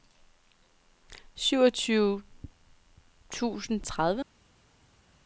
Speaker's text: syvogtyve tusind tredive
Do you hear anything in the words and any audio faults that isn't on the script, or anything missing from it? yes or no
no